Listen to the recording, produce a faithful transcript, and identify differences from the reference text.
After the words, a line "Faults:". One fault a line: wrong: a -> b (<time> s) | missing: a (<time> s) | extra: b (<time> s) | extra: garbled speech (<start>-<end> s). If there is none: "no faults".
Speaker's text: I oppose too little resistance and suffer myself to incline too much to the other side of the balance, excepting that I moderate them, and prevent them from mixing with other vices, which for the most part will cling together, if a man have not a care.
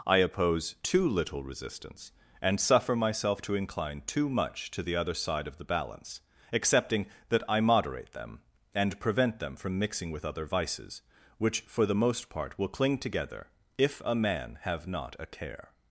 I oppose too little resistance and suffer myself to incline too much to the other side of the balance, excepting that I moderate them, and prevent them from mixing with other vices, which for the most part will cling together, if a man have not a care.
Faults:
no faults